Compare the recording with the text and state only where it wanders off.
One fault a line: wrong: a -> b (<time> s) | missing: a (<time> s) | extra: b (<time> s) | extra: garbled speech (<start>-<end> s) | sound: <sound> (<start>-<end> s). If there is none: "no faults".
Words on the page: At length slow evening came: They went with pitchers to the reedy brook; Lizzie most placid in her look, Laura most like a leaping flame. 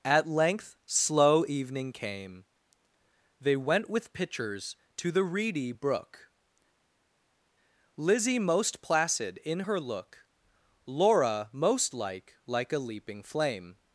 extra: like (12.5 s)